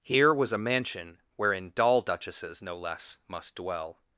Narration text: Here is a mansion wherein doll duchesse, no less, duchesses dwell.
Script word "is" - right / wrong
wrong